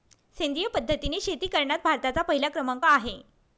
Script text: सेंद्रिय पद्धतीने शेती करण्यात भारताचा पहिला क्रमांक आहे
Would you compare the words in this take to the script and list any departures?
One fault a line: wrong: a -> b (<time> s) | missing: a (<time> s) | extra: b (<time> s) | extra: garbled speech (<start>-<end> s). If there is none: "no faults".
no faults